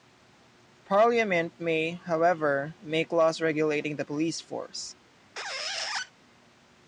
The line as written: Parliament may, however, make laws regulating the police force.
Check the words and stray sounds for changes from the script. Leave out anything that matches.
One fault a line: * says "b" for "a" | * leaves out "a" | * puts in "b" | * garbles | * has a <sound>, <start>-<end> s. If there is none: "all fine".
* has a squeak, 5.4-6.1 s